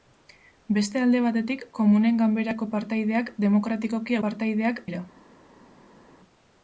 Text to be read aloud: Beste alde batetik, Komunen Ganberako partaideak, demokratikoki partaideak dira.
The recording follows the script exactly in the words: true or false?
true